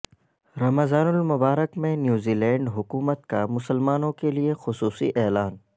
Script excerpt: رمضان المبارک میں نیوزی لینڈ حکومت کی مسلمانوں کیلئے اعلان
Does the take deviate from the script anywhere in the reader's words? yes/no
yes